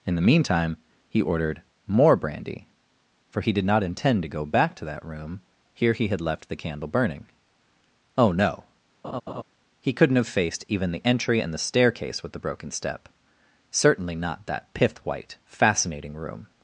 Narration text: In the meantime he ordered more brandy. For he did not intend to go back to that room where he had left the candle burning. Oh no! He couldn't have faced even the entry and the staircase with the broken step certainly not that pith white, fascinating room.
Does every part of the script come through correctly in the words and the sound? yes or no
no